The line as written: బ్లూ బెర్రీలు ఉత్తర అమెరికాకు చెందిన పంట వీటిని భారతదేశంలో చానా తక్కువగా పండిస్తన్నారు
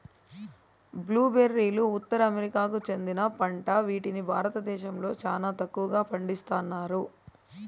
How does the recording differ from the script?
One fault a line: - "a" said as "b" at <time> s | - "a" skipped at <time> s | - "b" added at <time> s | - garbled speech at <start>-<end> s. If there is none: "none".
none